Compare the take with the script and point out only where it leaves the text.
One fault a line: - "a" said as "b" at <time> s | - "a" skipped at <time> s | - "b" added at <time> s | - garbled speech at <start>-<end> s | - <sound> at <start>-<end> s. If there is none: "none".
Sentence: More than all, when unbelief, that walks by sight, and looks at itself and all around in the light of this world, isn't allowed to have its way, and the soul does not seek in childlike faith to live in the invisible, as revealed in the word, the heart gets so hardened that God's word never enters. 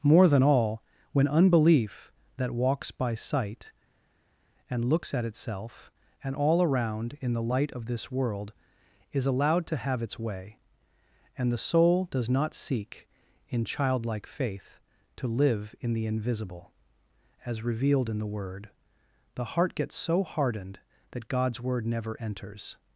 - "isn't" said as "is" at 9.1 s